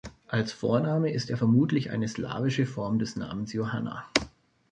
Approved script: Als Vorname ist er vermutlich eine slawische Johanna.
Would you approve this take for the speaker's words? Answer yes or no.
no